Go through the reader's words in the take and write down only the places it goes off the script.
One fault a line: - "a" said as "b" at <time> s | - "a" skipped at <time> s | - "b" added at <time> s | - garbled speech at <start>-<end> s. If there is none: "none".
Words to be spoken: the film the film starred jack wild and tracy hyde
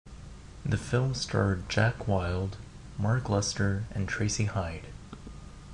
- "the film" skipped at 1.1 s
- "mark lester" added at 3.0 s